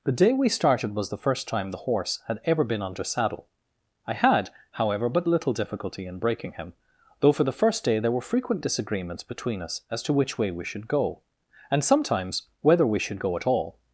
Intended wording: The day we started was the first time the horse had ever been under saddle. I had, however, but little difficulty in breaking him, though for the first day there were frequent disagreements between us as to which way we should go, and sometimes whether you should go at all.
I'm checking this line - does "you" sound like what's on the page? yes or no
no